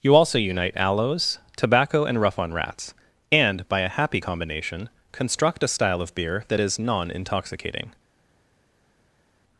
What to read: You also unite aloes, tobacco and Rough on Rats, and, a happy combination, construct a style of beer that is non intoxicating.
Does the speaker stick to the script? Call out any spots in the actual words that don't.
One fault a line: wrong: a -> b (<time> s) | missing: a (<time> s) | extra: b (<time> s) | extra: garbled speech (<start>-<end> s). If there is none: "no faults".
extra: by (3.7 s)